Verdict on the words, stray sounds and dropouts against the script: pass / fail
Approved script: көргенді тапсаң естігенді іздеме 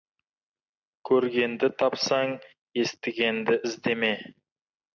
pass